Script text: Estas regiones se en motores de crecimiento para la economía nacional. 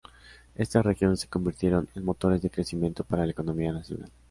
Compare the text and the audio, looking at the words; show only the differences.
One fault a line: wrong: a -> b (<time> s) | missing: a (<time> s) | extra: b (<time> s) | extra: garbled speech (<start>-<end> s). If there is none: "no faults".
extra: convirtieron (1.3 s)